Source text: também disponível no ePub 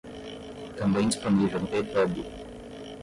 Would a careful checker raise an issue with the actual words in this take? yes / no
no